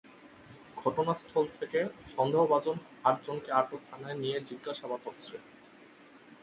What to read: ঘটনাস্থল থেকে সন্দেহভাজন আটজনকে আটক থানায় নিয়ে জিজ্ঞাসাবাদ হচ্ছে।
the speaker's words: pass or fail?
pass